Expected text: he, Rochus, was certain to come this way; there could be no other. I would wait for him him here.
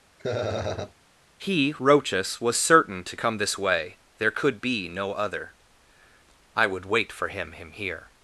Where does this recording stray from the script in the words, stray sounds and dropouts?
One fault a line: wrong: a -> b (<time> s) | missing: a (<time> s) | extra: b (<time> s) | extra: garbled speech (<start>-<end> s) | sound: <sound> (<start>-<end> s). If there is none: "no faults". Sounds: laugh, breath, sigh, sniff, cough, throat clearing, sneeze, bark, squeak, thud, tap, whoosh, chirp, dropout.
sound: laugh (0.2-0.9 s)